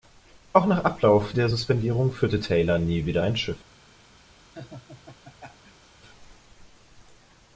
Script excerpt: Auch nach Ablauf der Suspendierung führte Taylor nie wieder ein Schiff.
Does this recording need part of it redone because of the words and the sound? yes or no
yes